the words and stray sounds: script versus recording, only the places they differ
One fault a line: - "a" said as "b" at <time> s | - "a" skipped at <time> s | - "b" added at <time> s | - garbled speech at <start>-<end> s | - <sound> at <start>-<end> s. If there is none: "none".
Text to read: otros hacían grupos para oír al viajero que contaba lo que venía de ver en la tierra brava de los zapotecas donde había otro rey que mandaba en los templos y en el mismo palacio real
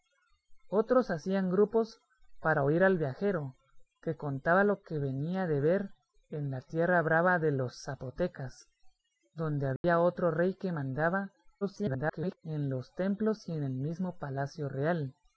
- dropout at 9.8-9.8 s
- garbled speech at 11.6-12.4 s